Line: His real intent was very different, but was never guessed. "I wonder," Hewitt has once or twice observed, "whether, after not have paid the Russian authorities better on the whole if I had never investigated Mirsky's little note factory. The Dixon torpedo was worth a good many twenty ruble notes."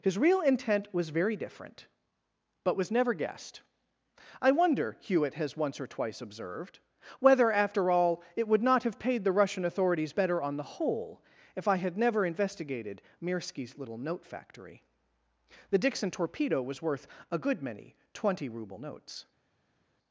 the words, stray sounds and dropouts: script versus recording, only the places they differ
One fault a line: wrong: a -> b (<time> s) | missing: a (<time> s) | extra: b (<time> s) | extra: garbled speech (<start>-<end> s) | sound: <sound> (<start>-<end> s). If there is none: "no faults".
extra: all it would (7.9 s)